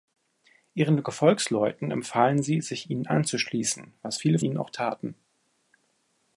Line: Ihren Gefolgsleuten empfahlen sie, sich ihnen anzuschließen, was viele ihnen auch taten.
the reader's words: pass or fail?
pass